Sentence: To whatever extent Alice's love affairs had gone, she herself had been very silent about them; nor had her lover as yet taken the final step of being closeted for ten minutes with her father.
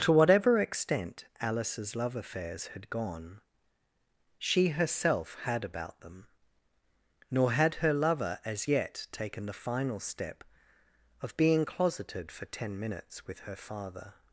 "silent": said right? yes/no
no